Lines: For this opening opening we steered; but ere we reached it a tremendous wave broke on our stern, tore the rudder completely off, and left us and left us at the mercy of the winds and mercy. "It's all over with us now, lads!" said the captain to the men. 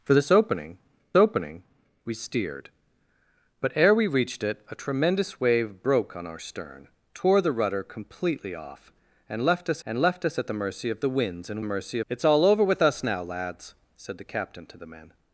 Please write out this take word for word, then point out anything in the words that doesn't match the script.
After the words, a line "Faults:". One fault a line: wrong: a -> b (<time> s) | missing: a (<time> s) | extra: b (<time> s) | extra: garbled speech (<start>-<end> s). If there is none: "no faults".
For this opening opening we steered; but ere we reached it a tremendous wave broke on our stern, tore the rudder completely off, and left us and left us at the mercy of the winds and mercy. "It's all over with us now, lads!" said the captain to the men.
Faults:
no faults